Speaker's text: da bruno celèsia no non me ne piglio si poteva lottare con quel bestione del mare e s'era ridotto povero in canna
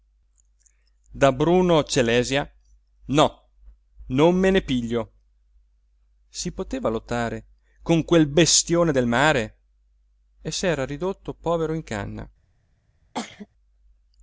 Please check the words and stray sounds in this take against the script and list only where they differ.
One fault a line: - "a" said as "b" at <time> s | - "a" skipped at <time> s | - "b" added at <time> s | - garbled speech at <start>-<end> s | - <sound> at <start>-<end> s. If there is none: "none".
- cough at 13.1-13.5 s